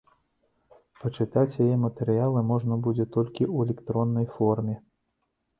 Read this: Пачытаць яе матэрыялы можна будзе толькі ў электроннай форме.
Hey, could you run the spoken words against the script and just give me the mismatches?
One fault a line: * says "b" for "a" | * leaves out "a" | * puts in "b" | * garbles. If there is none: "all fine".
all fine